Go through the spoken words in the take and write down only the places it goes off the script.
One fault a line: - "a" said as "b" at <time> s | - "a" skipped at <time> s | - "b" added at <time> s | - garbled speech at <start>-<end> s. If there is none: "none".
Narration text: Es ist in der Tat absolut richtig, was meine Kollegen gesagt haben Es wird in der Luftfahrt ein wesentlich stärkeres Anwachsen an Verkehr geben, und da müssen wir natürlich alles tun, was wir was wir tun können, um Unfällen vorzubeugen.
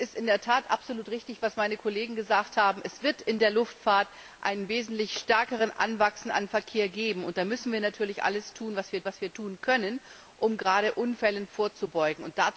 none